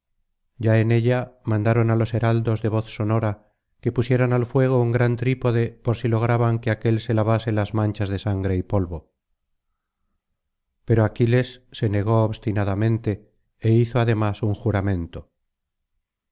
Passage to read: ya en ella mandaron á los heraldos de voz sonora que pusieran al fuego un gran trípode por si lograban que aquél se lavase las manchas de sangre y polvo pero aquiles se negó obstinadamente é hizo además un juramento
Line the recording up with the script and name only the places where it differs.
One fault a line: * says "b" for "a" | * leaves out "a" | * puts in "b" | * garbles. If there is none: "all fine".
all fine